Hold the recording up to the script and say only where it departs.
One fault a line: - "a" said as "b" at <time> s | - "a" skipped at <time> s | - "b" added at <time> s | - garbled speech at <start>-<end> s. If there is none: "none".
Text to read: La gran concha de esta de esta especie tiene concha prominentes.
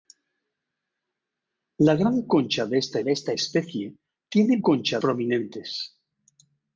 none